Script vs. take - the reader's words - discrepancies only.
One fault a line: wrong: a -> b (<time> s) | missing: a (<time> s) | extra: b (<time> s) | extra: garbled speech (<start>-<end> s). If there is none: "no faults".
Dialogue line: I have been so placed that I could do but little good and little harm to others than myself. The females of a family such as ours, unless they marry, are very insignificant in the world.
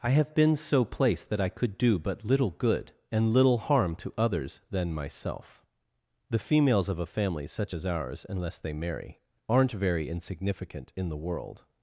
wrong: are -> aren't (9.5 s)